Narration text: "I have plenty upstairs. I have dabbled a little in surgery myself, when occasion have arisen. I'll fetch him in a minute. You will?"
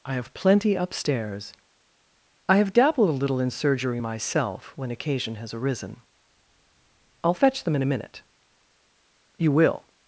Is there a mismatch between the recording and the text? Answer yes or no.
yes